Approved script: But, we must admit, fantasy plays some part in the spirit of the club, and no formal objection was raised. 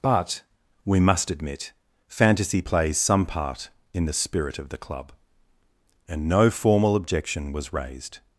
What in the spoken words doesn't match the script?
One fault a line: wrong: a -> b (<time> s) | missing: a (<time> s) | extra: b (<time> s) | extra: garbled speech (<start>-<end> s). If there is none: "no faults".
no faults